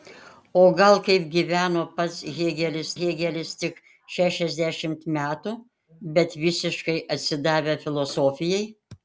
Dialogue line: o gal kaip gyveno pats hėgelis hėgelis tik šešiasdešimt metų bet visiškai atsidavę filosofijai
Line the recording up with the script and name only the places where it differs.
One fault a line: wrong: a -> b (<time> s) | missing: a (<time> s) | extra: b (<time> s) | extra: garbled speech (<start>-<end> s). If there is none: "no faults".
no faults